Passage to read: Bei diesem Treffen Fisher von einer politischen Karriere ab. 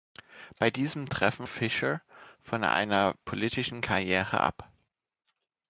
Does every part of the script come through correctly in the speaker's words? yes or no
yes